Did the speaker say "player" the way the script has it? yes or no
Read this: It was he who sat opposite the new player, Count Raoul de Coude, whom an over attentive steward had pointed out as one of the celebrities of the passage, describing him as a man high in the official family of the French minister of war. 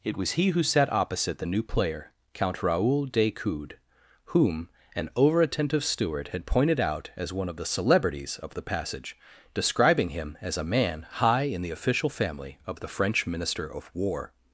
yes